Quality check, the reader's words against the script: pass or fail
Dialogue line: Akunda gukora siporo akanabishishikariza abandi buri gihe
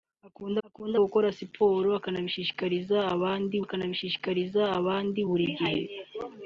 fail